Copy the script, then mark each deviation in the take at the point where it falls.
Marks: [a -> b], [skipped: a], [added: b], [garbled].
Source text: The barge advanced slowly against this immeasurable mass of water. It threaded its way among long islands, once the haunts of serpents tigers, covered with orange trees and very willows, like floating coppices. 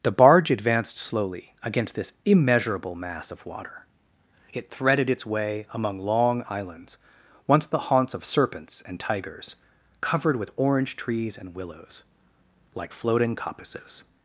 The barge advanced slowly against this immeasurable mass of water. It threaded its way among long islands, once the haunts of serpents [added: and] tigers, covered with orange trees and [skipped: very] willows, like floating coppices.